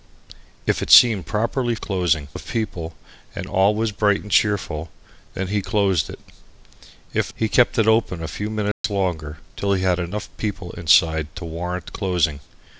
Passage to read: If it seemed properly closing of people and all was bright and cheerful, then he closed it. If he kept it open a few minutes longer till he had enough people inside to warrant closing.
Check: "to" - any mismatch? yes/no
no